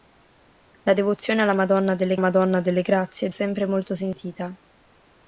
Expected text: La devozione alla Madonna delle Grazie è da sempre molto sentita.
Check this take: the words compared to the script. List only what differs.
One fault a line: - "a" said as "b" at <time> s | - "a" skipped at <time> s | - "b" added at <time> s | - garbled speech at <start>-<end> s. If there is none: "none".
- "Madonna delle" added at 2.2 s
- "da" skipped at 3.3 s